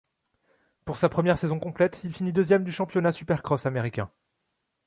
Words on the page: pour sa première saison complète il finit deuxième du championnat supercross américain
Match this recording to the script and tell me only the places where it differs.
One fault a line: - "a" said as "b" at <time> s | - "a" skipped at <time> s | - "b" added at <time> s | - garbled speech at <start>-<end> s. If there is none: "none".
none